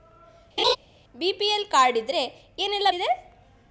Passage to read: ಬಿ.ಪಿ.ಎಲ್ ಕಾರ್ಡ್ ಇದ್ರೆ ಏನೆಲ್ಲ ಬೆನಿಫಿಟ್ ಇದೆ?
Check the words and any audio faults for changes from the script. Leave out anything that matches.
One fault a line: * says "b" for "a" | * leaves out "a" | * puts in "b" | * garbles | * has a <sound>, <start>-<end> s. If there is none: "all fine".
* has a laugh, 0.6-0.8 s
* leaves out "ಬೆನಿಫಿಟ್"